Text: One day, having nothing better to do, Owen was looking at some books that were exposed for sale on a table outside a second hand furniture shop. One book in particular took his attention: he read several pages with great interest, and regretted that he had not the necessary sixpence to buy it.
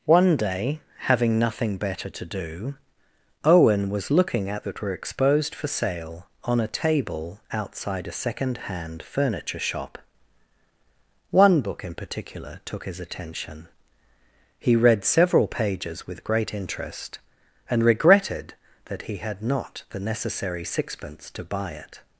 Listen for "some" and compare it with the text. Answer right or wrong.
wrong